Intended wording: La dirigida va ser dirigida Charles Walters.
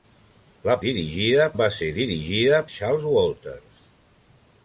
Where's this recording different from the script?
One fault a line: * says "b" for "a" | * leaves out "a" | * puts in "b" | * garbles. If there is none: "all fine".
all fine